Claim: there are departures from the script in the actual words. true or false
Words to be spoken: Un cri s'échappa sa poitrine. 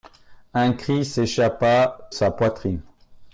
false